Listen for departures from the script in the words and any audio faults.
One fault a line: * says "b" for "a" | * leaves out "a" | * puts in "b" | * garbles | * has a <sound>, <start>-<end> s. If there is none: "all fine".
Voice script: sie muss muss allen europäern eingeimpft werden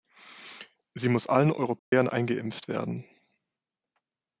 * leaves out "muss"
* has a dropout, 1.8-1.9 s